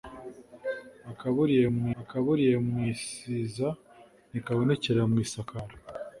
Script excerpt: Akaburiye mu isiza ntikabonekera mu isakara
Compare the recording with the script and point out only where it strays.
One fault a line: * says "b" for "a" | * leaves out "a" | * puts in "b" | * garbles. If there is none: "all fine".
* puts in "akaburiye mu"